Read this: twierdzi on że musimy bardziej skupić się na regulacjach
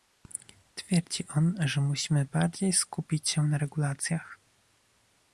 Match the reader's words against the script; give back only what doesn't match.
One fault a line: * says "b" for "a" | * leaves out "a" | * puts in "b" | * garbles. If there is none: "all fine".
all fine